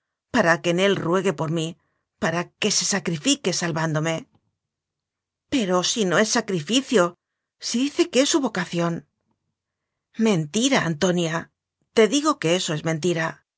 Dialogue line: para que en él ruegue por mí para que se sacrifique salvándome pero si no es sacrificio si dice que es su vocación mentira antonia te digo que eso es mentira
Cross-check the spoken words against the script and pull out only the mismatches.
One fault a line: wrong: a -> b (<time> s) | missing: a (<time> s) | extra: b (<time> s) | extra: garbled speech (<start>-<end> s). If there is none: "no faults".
no faults